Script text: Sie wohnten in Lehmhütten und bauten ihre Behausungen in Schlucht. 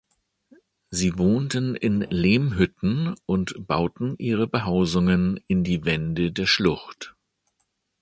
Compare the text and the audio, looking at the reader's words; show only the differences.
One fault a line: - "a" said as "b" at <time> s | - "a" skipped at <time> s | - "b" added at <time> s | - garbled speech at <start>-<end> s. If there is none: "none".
- "die Wände der" added at 5.6 s